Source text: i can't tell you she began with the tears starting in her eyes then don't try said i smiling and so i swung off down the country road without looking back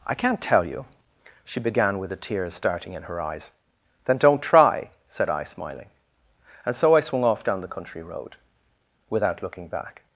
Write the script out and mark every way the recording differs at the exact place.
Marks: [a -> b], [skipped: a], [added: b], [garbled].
i can't tell you she began with the tears starting in her eyes then don't try said i smiling and so i swung off down the country road without looking back